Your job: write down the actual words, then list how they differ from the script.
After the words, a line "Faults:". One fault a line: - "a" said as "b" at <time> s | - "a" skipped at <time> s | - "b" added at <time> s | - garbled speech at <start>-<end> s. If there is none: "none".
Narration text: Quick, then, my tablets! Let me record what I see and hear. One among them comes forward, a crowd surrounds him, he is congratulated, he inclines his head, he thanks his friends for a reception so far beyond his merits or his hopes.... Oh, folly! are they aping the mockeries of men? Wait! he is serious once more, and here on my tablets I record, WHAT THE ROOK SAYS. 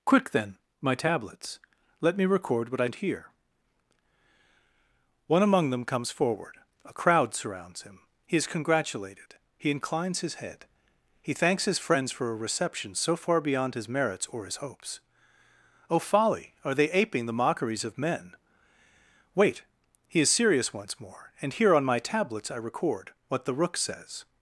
Quick, then, my tablets! Let me record what I and hear. One among them comes forward, a crowd surrounds him, he is congratulated, he inclines his head, he thanks his friends for a reception so far beyond his merits or his hopes.... Oh, folly! are they aping the mockeries of men? Wait! he is serious once more, and here on my tablets I record, WHAT THE ROOK SAYS.
Faults:
- "see" skipped at 2.9 s